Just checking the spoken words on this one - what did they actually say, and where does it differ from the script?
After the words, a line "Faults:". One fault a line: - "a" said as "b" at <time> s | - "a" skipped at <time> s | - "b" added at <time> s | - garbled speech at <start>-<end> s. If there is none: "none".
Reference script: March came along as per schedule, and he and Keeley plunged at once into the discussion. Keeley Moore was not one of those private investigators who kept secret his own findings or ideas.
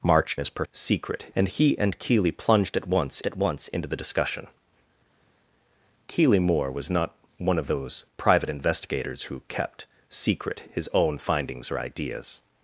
March as per secret, and he and Keeley plunged at once at once into the discussion. Keeley Moore was not one of those private investigators who kept secret his own findings or ideas.
Faults:
- "came along" skipped at 0.4 s
- "schedule" said as "secret" at 0.7 s
- "at once" added at 3.3 s